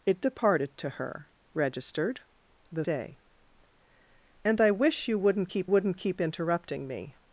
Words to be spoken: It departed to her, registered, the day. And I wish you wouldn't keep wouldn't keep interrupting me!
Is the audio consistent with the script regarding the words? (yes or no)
yes